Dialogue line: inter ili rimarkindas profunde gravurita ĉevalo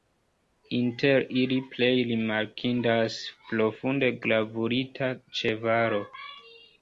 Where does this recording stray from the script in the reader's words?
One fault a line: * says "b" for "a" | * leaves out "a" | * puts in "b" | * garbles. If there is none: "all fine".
* puts in "plej"